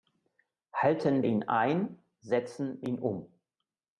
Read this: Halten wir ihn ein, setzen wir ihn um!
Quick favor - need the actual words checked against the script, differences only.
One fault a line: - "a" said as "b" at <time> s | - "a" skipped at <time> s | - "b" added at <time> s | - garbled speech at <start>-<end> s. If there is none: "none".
- "wir" skipped at 1.2 s
- "wir" skipped at 2.8 s